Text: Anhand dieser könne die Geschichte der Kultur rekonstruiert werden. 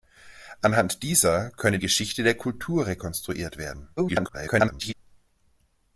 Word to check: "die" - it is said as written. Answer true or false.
false